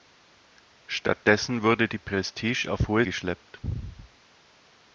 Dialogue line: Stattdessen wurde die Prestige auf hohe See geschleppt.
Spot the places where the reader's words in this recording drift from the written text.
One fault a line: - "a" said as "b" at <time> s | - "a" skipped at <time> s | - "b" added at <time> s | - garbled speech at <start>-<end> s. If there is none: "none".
- "See" skipped at 3.0 s